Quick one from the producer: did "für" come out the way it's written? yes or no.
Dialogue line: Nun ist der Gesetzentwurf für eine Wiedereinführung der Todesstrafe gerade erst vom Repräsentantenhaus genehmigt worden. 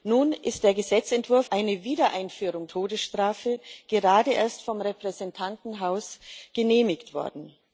no